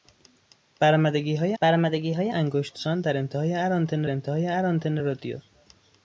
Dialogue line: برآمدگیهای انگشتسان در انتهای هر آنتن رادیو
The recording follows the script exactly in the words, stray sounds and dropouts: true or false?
false